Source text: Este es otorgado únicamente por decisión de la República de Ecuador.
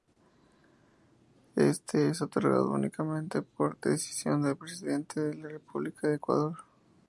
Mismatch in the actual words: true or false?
true